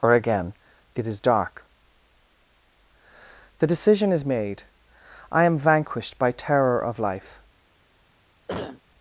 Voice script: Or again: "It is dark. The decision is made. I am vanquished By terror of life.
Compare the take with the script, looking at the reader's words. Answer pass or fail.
pass